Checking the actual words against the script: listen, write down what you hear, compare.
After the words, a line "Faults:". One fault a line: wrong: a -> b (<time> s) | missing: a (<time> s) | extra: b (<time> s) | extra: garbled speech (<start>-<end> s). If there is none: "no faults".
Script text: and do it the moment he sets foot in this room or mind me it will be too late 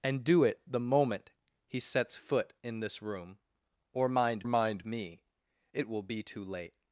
and do it the moment he sets foot in this room or mind mind me it will be too late
Faults:
extra: mind (4.5 s)